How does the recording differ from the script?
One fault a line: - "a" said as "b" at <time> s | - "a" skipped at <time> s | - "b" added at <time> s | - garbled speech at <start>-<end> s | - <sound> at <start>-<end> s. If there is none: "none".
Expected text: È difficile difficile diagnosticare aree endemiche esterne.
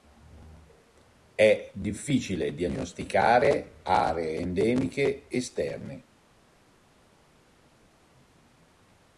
- "difficile" skipped at 2.5 s